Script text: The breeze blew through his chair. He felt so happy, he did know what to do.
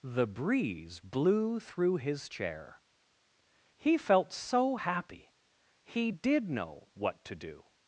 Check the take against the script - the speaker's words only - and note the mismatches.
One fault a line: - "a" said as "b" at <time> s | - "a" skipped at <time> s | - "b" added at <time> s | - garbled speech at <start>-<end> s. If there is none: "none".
none